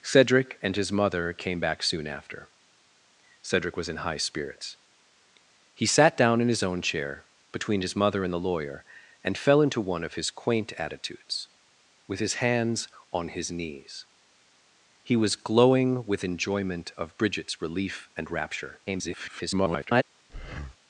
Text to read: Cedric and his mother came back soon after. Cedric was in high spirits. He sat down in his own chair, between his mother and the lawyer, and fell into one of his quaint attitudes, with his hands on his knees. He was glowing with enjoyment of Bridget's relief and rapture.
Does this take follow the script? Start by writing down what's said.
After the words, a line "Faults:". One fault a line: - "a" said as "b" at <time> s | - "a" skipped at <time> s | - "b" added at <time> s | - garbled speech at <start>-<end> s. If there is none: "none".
Cedric and his mother came back soon after. Cedric was in high spirits. He sat down in his own chair, between his mother and the lawyer, and fell into one of his quaint attitudes, with his hands on his knees. He was glowing with enjoyment of Bridget's relief and rapture. [garbled]
Faults:
- garbled speech at 18.9-20.0 s